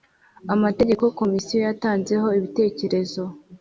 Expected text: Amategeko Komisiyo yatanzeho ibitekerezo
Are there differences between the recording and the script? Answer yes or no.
no